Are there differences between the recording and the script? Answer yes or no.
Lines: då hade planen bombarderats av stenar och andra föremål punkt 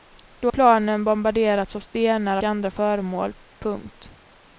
yes